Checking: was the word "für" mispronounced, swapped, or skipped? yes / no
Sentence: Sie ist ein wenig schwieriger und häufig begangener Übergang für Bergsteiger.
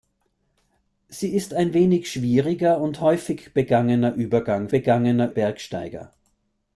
yes